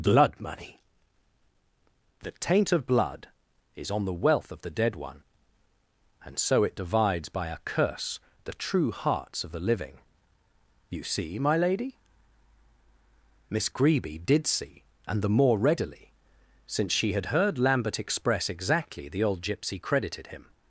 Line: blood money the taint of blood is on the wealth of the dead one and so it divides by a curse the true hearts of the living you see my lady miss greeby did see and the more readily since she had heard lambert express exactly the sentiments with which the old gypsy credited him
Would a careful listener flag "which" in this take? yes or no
yes